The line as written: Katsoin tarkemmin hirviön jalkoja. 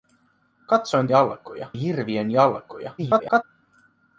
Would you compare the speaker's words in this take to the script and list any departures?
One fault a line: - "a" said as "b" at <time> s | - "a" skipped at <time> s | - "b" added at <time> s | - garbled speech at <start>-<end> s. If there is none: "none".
- "tarkemmin" said as "jalkoja" at 1.1 s
- garbled speech at 3.0-3.4 s